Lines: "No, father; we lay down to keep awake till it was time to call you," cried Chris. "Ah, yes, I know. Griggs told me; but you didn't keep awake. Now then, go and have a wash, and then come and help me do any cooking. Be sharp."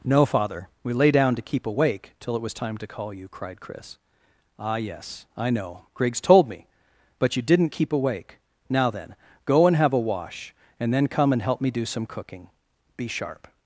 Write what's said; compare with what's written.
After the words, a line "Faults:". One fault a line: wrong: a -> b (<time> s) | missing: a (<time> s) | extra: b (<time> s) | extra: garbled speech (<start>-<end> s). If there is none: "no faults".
"No, father; we lay down to keep awake till it was time to call you," cried Chris. "Ah, yes, I know. Griggs told me; but you didn't keep awake. Now then, go and have a wash, and then come and help me do some cooking. Be sharp."
Faults:
wrong: any -> some (11.8 s)